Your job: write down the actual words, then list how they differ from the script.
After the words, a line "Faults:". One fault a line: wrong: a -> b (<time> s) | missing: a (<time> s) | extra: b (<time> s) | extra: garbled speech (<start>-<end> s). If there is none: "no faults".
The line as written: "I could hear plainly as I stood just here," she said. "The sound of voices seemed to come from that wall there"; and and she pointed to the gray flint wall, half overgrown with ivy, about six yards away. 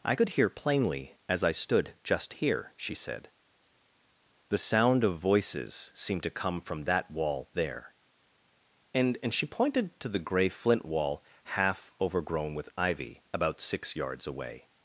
"I could hear plainly as I stood just here," she said. "The sound of voices seemed to come from that wall there"; and and she pointed to the gray flint wall, half overgrown with ivy, about six yards away.
Faults:
no faults